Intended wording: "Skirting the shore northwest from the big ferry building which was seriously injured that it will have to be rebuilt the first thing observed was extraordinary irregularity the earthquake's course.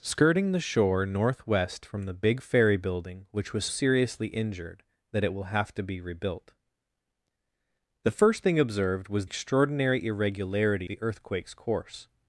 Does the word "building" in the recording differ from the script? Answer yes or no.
no